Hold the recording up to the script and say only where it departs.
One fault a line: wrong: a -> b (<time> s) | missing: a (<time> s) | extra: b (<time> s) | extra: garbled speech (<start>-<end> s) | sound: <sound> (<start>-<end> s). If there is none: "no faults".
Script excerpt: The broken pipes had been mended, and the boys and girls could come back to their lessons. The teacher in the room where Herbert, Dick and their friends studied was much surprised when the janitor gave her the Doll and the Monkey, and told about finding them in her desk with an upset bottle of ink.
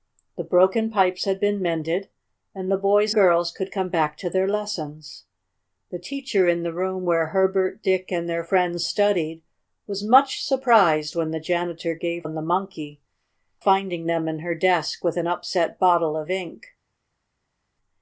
missing: and (3.1 s)
missing: her the Doll (12.2 s)
missing: and told about (13.0 s)